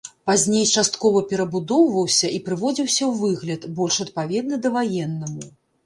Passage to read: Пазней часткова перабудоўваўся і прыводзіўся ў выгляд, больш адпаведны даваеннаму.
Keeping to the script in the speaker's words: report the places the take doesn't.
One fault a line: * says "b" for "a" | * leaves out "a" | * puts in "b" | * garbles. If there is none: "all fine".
all fine